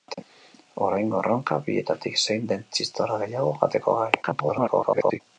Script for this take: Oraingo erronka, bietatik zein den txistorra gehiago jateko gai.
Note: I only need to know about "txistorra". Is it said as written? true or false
true